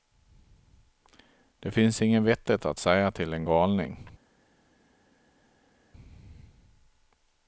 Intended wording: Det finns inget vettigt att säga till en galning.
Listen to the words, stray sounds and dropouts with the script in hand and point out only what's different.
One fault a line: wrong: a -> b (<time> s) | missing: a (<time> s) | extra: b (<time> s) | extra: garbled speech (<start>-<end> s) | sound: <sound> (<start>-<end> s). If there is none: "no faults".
no faults